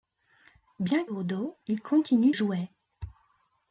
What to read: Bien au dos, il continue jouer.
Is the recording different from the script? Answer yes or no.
no